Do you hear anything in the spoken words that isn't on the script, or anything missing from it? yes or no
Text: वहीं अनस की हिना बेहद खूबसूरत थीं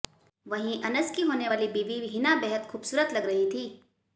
yes